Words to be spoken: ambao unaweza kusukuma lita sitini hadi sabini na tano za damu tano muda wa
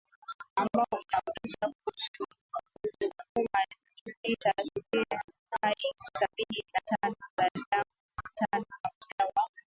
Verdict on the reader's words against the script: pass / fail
pass